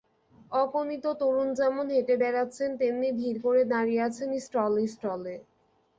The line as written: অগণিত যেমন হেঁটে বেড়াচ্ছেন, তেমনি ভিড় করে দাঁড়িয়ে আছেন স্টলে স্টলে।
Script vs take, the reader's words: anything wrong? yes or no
yes